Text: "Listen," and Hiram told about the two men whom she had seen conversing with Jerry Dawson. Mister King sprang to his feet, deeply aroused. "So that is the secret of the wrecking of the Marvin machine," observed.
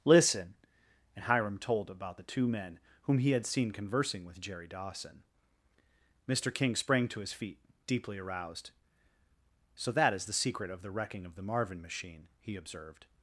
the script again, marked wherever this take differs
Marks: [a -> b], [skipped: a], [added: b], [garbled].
"Listen," and Hiram told about the two men whom [she -> he] had seen conversing with Jerry Dawson. Mister King sprang to his feet, deeply aroused. "So that is the secret of the wrecking of the Marvin machine," [added: he] observed.